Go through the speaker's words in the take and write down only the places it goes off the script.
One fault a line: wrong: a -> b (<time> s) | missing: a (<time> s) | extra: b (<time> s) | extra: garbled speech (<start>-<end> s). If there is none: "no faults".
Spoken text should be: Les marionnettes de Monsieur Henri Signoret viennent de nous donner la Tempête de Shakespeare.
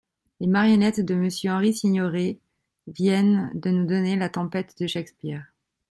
no faults